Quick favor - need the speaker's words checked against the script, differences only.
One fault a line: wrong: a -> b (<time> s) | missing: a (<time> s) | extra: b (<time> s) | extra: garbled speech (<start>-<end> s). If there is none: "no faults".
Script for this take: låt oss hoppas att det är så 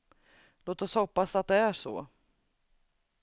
no faults